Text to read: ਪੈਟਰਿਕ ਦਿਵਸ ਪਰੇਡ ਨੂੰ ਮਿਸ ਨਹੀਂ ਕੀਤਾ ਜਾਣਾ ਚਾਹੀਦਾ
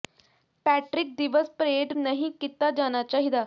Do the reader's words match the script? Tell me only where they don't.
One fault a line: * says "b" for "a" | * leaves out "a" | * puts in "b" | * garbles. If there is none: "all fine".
* leaves out "ਨੂੰ ਮਿਸ"